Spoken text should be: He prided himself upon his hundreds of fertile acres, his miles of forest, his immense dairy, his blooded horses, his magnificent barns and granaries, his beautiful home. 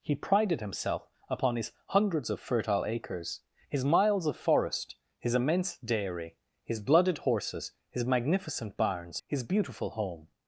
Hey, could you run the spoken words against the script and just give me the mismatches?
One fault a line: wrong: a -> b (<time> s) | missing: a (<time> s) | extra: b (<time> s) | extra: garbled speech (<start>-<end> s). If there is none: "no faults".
missing: and granaries (9.2 s)